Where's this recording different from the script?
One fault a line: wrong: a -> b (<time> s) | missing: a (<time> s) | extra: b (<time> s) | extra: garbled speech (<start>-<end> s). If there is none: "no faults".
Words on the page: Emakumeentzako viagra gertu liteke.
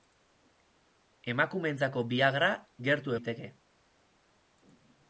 no faults